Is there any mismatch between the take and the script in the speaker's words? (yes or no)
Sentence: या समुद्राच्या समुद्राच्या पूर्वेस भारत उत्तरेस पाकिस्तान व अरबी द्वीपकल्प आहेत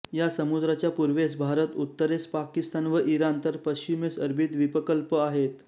yes